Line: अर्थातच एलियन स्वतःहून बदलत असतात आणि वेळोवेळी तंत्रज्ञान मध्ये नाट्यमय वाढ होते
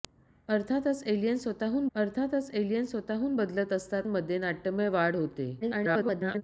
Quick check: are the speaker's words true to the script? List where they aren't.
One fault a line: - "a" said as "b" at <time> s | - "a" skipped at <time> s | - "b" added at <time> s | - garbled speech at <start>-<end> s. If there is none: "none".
- "बदलत असतात आणि वेळोवेळी तंत्रज्ञान" said as "अर्थातच एलियन स्वतःहून बदलत असतात" at 2.0 s
- garbled speech at 5.6-6.4 s